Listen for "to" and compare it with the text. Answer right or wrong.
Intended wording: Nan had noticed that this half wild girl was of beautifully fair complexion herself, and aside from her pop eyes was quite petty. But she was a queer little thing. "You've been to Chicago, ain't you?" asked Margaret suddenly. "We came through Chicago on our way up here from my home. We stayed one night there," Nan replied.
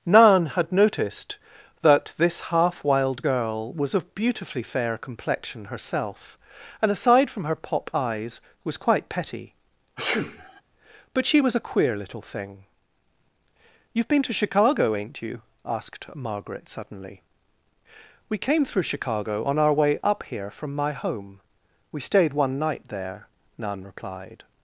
right